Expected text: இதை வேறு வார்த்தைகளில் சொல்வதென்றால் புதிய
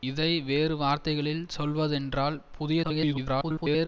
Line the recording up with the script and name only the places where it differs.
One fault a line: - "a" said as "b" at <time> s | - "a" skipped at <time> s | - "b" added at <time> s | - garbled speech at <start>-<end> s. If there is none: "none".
- garbled speech at 2.8-3.9 s